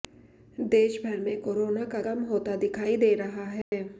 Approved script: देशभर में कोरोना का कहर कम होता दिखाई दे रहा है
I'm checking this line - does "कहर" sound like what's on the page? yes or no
no